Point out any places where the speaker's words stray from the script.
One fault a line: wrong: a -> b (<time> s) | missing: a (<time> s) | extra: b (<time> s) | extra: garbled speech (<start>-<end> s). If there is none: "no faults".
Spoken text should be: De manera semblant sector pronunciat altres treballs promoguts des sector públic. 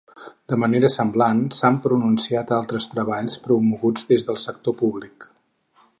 wrong: sector -> s'han (1.6 s)
extra: del (4.3 s)